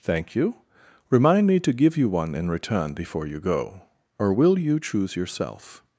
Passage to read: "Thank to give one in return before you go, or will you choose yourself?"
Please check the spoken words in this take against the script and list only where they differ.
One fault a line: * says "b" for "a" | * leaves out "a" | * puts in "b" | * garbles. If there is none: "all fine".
* puts in "you Remind me"
* puts in "you"